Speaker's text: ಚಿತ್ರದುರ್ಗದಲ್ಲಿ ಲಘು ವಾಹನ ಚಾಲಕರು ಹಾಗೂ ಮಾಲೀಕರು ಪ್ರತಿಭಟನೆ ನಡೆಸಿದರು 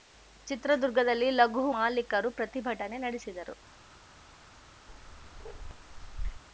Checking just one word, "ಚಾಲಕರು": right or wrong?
wrong